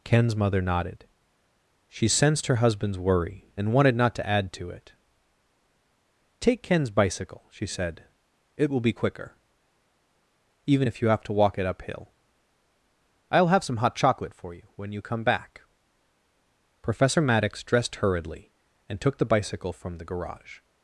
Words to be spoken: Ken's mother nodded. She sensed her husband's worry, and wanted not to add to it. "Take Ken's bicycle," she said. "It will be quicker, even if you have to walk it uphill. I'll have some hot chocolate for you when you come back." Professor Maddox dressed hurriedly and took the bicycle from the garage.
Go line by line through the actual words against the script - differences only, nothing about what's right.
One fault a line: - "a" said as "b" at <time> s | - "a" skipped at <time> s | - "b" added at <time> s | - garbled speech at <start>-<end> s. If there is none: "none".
none